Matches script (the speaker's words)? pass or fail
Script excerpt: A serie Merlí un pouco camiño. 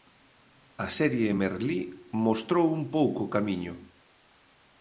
fail